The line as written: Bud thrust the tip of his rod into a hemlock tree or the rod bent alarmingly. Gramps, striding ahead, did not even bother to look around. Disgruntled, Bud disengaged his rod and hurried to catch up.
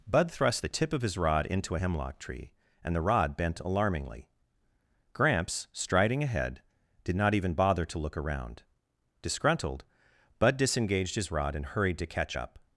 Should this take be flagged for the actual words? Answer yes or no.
yes